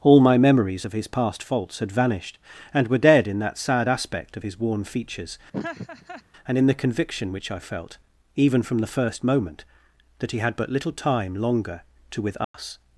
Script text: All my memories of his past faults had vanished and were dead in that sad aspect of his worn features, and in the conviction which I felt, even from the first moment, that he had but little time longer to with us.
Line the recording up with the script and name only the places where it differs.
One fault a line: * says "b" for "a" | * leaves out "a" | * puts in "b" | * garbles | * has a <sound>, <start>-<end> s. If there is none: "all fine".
* has a laugh, 5.5-6.2 s
* has a dropout, 12.4-12.5 s